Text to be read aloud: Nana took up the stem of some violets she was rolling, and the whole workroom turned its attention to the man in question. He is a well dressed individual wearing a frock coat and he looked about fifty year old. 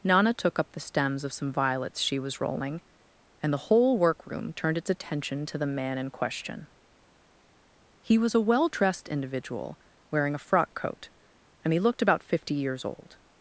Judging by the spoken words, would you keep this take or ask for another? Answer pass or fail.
fail